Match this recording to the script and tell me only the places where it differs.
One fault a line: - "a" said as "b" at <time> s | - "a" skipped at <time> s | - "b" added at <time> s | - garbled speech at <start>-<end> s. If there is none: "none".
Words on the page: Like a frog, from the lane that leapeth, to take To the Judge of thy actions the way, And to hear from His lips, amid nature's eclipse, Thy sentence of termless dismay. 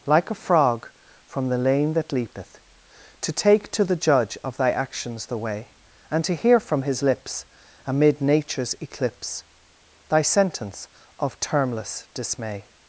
none